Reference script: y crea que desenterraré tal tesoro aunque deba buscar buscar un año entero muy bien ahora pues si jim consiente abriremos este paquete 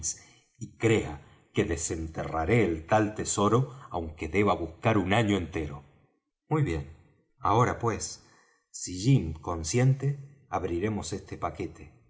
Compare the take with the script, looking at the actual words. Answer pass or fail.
fail